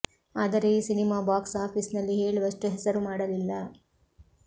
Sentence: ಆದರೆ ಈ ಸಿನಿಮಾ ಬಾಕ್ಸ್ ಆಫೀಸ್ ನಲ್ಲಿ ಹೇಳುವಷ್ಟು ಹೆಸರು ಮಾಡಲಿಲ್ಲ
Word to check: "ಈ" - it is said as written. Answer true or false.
true